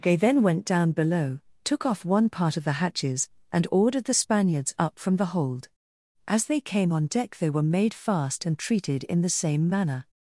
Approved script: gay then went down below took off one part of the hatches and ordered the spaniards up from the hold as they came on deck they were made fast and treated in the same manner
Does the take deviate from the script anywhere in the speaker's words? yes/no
no